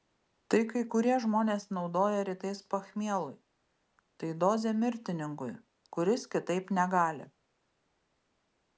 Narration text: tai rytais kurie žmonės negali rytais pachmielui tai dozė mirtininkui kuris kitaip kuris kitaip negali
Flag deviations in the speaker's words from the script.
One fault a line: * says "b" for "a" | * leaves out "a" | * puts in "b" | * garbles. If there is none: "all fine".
* says "kai" for "rytais"
* says "naudoja" for "negali"
* leaves out "kuris kitaip"